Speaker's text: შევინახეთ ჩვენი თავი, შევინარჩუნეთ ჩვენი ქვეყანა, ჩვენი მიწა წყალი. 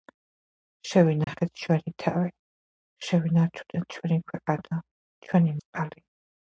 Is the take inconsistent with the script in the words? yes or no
yes